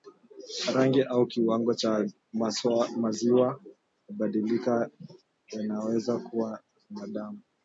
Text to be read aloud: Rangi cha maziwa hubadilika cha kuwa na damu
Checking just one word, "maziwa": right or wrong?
right